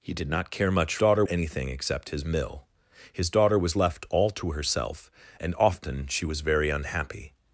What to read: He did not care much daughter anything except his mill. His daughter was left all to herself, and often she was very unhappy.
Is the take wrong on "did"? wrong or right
right